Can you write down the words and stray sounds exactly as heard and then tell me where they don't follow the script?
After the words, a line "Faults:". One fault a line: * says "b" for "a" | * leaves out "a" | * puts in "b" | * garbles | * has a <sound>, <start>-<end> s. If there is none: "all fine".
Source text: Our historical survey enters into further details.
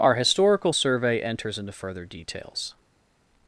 Our historical survey enters into further details.
Faults:
all fine